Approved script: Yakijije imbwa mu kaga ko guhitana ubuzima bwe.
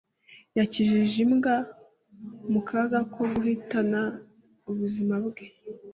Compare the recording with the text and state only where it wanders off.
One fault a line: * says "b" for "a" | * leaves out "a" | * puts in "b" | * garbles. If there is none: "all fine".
all fine